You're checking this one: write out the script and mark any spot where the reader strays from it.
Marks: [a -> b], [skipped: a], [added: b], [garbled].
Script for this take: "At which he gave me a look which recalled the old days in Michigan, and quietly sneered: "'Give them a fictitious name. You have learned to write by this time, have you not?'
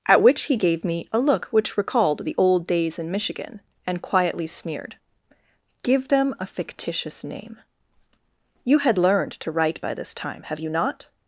"At which he gave me a look which recalled the old days in Michigan, and quietly sneered: "'Give them a fictitious name. You [have -> had] learned to write by this time, have you not?'